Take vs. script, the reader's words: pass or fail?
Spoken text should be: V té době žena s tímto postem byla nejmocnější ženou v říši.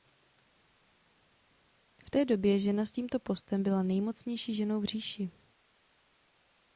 pass